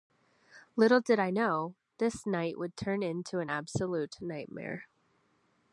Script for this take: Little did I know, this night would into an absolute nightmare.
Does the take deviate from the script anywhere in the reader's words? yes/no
yes